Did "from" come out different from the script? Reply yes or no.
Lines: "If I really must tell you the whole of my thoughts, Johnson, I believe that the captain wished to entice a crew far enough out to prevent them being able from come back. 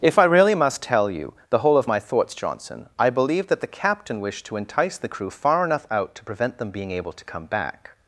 yes